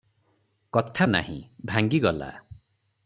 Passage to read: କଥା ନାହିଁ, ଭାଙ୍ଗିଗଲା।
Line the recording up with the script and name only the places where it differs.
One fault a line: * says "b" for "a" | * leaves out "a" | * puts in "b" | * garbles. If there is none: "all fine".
all fine